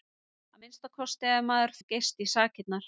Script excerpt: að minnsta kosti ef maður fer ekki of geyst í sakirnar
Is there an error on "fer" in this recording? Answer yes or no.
yes